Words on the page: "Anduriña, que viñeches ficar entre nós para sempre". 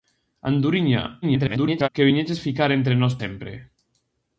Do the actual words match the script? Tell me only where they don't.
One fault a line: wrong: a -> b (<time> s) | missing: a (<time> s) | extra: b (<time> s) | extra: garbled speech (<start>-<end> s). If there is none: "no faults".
extra: garbled speech (1.2-1.9 s)
missing: para (3.1 s)